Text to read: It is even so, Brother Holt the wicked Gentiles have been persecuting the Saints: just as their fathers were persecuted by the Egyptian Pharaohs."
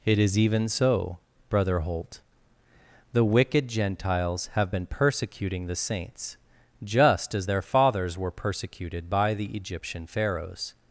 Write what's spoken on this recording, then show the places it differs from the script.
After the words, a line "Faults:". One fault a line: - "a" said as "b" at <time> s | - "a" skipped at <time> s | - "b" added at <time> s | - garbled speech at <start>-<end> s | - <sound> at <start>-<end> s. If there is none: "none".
It is even so, Brother Holt the wicked Gentiles have been persecuting the Saints: just as their fathers were persecuted by the Egyptian Pharaohs."
Faults:
none